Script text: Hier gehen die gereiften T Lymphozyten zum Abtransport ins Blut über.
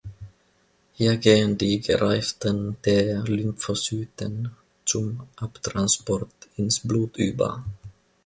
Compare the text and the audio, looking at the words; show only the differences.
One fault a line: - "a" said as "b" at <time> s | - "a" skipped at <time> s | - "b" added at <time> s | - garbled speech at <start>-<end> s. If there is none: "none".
none